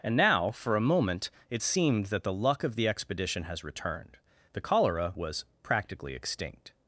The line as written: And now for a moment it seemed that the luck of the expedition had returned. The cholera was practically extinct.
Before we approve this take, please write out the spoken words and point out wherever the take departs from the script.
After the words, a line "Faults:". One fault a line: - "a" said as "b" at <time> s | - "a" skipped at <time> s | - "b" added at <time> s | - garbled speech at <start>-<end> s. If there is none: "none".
And now for a moment it seemed that the luck of the expedition has returned. The cholera was practically extinct.
Faults:
- "had" said as "has" at 3.4 s